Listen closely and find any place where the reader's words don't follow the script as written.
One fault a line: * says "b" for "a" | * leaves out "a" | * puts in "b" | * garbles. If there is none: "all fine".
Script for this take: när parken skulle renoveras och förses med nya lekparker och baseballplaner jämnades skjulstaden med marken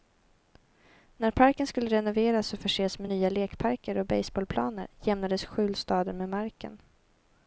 all fine